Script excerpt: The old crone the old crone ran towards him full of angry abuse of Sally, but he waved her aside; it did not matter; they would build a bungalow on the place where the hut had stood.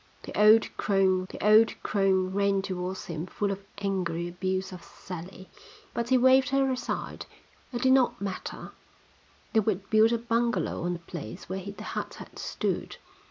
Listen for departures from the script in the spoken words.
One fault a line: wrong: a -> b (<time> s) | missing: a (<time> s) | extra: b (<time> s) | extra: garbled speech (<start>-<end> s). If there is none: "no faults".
no faults